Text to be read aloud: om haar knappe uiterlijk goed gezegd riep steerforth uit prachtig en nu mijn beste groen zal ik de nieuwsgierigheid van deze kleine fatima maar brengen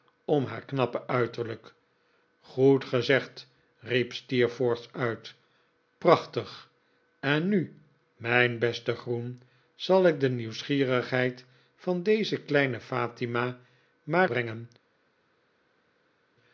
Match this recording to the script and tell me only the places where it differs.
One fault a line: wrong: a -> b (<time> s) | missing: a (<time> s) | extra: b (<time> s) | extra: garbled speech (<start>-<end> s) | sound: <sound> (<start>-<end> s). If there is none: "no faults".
no faults